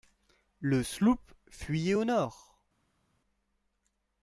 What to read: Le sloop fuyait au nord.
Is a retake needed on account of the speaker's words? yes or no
no